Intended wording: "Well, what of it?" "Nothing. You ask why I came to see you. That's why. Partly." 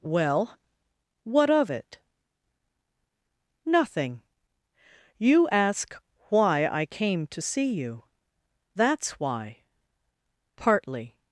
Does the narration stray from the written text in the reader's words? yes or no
no